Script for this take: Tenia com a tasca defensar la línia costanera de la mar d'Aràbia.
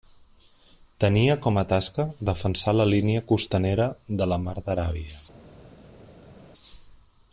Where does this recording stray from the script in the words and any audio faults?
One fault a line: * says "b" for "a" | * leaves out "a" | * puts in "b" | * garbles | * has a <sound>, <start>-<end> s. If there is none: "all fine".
all fine